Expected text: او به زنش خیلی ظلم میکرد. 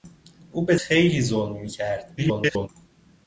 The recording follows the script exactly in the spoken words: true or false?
false